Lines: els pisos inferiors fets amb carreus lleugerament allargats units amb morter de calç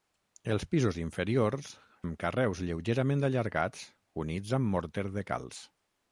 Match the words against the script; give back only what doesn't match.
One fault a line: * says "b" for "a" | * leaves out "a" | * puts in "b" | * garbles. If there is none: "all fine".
* leaves out "fets"